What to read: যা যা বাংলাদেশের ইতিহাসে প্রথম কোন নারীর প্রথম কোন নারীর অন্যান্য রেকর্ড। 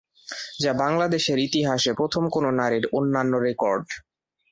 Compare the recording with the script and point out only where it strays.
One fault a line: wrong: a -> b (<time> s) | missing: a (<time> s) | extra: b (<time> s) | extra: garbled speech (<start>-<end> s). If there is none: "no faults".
missing: যা (0.7 s)
missing: প্রথম কোন নারীর (2.8 s)